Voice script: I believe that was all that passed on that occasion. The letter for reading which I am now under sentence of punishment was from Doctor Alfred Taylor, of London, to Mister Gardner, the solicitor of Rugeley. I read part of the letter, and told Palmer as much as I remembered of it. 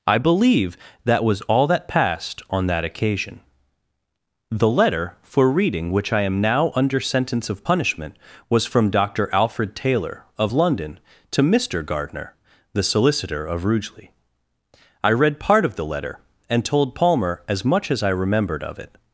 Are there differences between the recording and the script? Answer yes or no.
no